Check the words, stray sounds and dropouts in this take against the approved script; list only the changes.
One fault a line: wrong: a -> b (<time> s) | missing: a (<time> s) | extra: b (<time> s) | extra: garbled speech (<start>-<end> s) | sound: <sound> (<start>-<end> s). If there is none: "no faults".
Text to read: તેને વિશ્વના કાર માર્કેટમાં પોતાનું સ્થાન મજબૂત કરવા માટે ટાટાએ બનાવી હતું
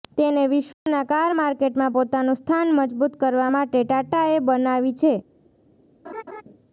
sound: dropout (0.7-0.9 s)
wrong: હતું -> છે (5.0 s)
sound: laugh (6.0-6.4 s)